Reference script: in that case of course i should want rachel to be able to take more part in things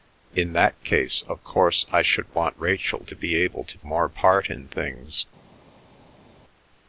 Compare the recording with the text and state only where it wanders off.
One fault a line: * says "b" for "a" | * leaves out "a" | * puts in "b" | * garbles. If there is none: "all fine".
* leaves out "take"